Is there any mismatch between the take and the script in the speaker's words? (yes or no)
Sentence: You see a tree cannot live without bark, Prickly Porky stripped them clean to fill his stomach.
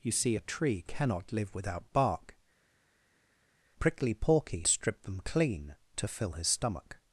no